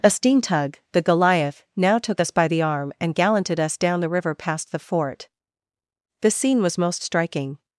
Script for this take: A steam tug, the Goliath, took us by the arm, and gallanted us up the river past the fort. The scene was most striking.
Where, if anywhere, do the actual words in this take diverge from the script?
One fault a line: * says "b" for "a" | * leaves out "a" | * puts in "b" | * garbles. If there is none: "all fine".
* puts in "now"
* says "down" for "up"